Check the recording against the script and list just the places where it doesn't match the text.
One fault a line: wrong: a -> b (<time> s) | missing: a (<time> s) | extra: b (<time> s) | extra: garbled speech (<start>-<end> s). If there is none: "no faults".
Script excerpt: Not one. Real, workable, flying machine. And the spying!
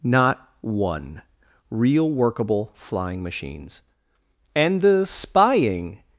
wrong: machine -> machines (3.2 s)